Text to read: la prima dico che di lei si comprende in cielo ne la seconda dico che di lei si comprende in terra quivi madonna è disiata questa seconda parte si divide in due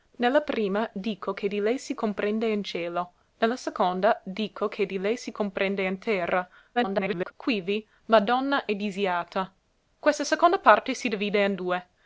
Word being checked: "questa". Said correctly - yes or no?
yes